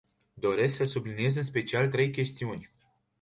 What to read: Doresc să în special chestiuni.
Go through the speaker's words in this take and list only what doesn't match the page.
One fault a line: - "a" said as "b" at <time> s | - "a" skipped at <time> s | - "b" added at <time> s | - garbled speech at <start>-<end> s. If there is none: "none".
- "subliniez" added at 0.8 s
- "trei" added at 1.9 s